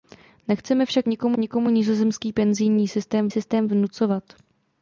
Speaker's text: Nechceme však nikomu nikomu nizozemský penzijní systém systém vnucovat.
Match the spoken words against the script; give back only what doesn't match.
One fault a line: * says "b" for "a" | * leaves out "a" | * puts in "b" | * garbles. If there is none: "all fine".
all fine